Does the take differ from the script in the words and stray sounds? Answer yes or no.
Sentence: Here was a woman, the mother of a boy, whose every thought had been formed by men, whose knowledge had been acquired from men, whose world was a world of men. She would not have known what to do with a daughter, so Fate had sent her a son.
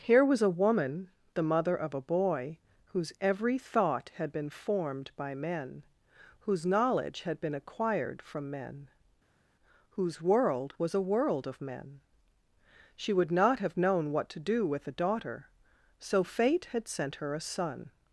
no